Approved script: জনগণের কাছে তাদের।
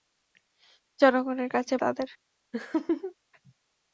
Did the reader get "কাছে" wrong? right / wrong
right